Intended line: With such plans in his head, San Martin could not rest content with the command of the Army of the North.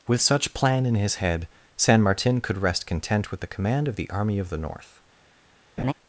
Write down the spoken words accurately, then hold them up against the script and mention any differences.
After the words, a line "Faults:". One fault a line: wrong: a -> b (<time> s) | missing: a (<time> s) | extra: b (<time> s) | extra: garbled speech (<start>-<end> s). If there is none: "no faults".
With such plan in his head, San Martin could rest content with the command of the Army of the North.
Faults:
wrong: plans -> plan (0.5 s)
missing: not (2.6 s)